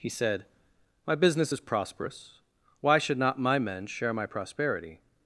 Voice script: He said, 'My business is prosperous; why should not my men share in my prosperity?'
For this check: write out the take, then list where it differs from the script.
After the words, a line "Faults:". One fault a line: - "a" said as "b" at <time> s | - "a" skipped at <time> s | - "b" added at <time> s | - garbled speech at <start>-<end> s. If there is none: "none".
He said, 'My business is prosperous; why should not my men share my prosperity?'
Faults:
- "in" skipped at 4.1 s